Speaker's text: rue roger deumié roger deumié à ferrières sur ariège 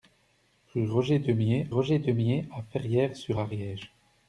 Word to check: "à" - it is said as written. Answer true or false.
true